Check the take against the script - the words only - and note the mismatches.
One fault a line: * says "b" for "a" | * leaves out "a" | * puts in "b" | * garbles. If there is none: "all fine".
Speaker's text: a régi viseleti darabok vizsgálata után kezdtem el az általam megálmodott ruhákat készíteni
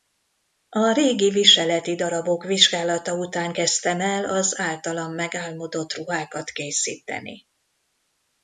all fine